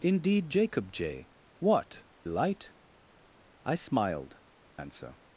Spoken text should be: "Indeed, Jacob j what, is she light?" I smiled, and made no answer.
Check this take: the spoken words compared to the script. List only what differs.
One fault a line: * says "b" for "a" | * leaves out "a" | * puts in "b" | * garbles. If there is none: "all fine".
* leaves out "is she"
* leaves out "and made no"